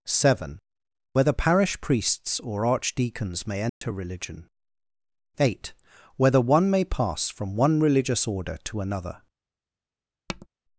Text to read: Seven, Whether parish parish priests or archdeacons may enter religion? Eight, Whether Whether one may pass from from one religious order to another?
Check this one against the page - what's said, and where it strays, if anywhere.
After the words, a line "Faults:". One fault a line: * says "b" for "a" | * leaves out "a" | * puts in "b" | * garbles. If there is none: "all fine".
Seven, Whether parish priests or archdeacons may enter religion? Eight, Whether one may pass from one religious order to another?
Faults:
* leaves out "parish"
* leaves out "Whether"
* leaves out "from"